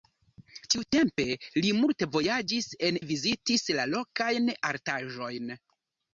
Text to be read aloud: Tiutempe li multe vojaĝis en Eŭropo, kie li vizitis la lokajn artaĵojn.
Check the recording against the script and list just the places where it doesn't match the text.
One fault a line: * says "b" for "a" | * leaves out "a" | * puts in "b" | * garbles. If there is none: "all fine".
* leaves out "Eŭropo kie"